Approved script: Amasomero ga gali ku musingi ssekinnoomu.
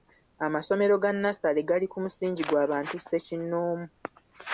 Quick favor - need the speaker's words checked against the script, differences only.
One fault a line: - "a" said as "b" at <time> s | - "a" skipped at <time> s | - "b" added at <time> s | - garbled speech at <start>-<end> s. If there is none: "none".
- "nnassale" added at 1.1 s
- "gwa bantu" added at 2.5 s